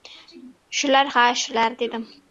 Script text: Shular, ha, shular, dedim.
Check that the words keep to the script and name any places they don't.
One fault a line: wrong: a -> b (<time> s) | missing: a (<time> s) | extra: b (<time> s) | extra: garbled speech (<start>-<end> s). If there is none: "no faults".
no faults